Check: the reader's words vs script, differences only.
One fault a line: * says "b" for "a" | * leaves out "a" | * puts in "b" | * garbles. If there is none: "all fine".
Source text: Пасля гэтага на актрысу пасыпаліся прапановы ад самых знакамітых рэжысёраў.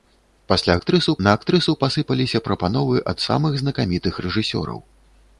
* says "актрысу" for "гэтага"